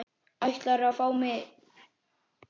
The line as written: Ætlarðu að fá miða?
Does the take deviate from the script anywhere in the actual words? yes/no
no